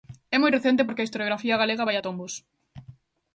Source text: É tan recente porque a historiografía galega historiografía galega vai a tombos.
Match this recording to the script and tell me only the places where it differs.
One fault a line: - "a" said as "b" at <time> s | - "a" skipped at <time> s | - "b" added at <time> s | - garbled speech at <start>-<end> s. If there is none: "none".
- "tan" said as "moi" at 0.4 s
- "historiografía galega" skipped at 1.9 s